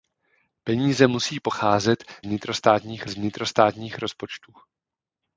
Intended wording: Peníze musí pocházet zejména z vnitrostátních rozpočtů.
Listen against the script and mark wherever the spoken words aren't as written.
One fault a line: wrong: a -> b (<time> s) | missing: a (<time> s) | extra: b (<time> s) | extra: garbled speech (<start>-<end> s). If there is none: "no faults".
wrong: zejména -> vnitrostátních (2.2 s)